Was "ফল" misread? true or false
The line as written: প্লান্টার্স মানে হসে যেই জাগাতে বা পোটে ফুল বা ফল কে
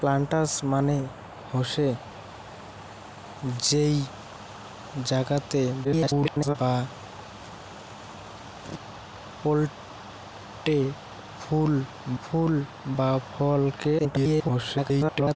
false